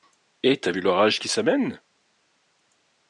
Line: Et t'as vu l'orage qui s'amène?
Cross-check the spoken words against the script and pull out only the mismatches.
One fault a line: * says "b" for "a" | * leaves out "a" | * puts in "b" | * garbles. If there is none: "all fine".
all fine